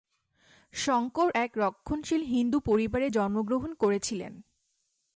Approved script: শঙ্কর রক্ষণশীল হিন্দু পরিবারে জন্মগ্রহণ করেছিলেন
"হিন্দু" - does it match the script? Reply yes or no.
yes